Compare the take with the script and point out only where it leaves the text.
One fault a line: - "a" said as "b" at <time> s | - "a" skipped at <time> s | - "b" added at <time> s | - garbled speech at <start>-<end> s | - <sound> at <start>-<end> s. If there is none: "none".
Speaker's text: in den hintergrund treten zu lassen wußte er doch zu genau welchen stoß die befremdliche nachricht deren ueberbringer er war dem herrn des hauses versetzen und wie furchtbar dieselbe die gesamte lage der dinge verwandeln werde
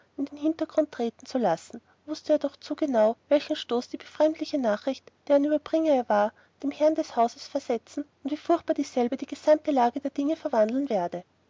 none